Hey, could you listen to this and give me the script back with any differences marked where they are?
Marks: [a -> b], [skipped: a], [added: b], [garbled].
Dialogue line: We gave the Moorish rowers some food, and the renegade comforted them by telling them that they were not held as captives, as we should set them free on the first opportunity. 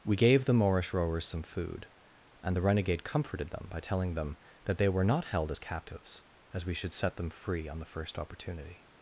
We gave the Moorish rowers some food, and the renegade comforted them by telling them that they were not held as captives, as we should set them free on the first opportunity.